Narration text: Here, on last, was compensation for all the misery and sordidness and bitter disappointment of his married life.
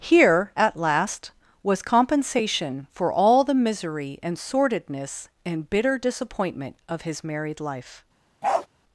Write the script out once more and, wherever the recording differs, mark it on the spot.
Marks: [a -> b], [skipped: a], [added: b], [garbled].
Here, [on -> at] last, was compensation for all the misery and sordidness and bitter disappointment of his married life.